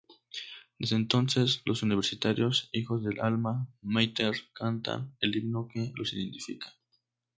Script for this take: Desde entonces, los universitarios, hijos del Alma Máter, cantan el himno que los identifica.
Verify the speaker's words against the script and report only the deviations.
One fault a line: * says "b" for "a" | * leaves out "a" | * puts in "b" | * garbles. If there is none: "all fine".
all fine